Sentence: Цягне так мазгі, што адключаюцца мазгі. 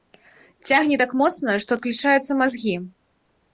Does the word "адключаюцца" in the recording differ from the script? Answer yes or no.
no